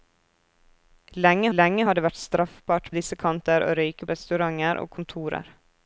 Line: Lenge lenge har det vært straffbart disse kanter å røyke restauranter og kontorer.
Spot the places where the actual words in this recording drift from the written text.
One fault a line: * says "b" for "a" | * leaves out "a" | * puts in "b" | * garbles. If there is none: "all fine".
all fine